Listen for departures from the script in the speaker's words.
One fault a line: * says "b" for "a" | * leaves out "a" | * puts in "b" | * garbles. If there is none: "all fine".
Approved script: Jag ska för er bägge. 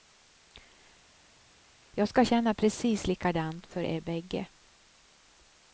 * puts in "känna precis likadant"